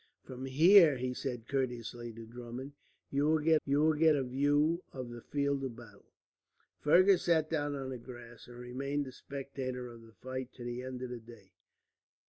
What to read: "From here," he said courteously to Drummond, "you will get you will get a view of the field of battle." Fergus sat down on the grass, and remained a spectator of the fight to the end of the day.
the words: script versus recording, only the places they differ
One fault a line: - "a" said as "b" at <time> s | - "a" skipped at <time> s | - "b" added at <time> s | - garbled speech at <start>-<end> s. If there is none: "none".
none